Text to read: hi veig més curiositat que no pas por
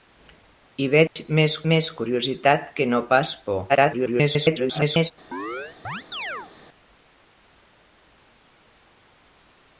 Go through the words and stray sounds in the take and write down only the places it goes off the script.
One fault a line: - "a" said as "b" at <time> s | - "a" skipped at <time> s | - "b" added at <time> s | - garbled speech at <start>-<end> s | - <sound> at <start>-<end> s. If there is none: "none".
- dropout at 1.1-1.2 s
- "més" added at 1.7 s
- garbled speech at 3.7-5.1 s
- chirp at 5.3-6.5 s